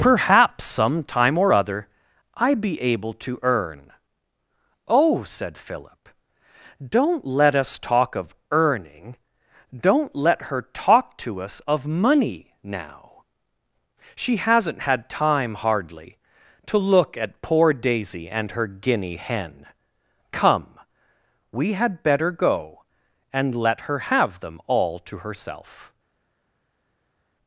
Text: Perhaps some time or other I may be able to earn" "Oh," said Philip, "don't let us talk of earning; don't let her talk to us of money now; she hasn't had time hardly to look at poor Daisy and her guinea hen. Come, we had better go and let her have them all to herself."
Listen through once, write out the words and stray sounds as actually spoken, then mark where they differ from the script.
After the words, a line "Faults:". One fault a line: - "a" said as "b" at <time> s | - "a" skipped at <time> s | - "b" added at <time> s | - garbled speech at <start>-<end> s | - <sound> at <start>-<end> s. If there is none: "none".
Perhaps some time or other I be able to earn" "Oh," said Philip, "don't let us talk of earning; don't let her talk to us of money now; she hasn't had time hardly to look at poor Daisy and her guinea hen. Come, we had better go and let her have them all to herself."
Faults:
- "may" skipped at 2.5 s